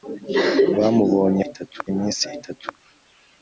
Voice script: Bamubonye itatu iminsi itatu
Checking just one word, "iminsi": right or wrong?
right